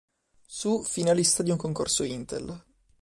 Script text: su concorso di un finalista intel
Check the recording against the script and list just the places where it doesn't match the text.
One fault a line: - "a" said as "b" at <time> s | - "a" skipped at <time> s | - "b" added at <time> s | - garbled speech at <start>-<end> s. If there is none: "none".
- "concorso" said as "finalista" at 0.8 s
- "finalista" said as "concorso" at 1.6 s